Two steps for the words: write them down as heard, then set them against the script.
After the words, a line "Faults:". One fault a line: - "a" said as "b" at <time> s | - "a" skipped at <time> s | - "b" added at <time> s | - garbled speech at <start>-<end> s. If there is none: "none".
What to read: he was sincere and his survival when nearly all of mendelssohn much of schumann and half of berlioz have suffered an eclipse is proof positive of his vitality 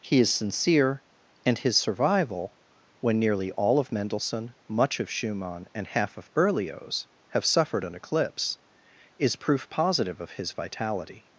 he is sincere and his survival when nearly all of mendelssohn much of schumann and half of berlioz have suffered an eclipse is proof positive of his vitality
Faults:
- "was" said as "is" at 0.2 s